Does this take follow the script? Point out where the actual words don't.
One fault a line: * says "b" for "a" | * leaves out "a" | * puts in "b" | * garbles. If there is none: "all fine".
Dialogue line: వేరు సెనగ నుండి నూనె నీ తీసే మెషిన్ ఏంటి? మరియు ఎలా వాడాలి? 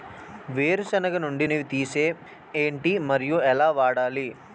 * leaves out "నూనె"
* leaves out "మెషిన్"